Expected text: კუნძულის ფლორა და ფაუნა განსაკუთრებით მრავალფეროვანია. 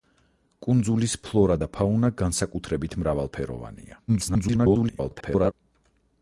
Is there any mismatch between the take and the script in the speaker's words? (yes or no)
yes